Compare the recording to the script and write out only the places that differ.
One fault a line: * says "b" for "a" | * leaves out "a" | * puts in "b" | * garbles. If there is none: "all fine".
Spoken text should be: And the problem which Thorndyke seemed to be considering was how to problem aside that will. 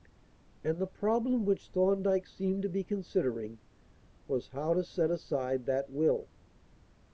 * says "set" for "problem"